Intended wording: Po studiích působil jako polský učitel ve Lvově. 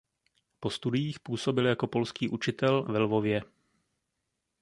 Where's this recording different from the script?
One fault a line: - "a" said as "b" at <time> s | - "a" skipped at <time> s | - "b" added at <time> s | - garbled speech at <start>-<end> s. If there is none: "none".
none